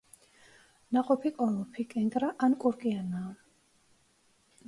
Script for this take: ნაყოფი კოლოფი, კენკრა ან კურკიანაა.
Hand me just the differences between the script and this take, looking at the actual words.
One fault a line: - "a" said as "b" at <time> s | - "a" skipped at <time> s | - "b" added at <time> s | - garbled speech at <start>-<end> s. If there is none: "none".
none